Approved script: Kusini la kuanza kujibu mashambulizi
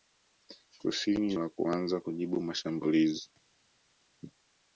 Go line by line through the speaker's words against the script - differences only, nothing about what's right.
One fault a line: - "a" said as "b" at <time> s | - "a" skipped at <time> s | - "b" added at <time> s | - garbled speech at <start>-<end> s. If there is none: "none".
none